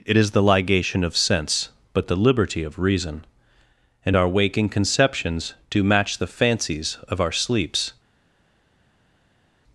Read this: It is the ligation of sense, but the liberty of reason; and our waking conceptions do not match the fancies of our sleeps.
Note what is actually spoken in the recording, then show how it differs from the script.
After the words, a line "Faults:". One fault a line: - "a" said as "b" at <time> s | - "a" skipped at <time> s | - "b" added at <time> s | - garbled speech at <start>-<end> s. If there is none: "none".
It is the ligation of sense, but the liberty of reason; and our waking conceptions do match the fancies of our sleeps.
Faults:
- "not" skipped at 5.8 s